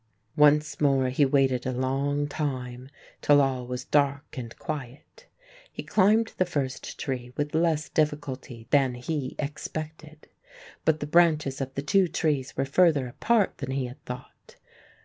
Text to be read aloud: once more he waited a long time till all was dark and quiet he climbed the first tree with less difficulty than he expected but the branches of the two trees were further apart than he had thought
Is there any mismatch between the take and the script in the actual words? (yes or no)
no